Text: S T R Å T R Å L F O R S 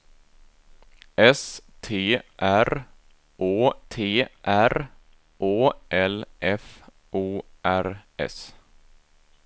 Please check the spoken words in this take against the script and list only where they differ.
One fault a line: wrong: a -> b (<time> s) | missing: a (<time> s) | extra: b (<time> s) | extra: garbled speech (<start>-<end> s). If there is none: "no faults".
no faults